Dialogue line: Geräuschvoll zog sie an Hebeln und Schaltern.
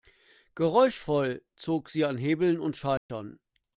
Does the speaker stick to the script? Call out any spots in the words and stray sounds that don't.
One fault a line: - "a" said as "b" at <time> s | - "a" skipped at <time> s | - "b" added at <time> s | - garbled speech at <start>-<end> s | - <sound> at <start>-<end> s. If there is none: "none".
- dropout at 3.0-3.1 s